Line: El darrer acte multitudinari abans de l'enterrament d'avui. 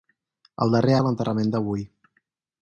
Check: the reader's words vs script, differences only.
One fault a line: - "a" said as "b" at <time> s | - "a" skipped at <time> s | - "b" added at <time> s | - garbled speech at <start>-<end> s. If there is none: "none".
- "acte multitudinari abans" skipped at 0.9 s